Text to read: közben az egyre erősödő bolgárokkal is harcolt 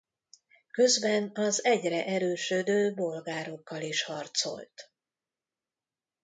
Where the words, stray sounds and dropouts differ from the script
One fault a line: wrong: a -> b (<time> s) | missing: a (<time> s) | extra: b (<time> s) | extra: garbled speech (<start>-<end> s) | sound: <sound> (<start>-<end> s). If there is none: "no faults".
no faults